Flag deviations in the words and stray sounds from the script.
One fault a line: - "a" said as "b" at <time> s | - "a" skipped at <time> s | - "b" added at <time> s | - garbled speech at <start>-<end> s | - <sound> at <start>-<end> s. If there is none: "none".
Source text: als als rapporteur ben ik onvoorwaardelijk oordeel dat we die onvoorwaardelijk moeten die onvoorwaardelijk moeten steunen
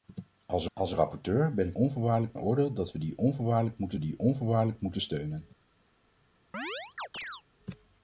- chirp at 6.5-7.4 s